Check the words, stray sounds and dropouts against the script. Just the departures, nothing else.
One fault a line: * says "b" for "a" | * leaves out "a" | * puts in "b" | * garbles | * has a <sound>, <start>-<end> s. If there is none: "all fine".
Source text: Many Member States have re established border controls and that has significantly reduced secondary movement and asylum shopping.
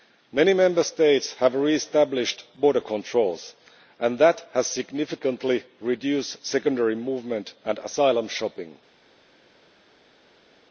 all fine